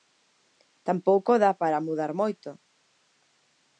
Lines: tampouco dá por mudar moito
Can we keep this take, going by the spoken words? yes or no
no